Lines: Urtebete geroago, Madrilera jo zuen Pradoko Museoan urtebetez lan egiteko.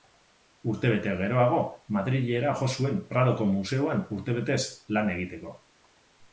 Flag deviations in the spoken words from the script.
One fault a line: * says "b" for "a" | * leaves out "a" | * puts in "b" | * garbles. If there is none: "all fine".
all fine